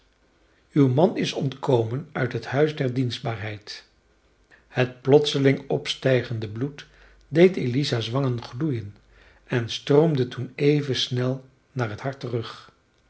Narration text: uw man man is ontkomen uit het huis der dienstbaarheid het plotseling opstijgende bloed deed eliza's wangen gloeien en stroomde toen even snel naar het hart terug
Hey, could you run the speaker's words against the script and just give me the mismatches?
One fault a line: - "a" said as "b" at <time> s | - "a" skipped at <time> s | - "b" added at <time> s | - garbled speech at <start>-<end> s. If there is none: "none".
- "man" skipped at 1.2 s